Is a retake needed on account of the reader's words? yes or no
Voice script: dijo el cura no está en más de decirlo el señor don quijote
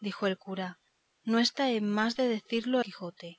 yes